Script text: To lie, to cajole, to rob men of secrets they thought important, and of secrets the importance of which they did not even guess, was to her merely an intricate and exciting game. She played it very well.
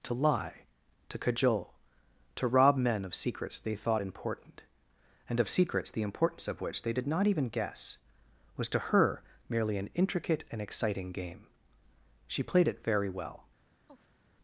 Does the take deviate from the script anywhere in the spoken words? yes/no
no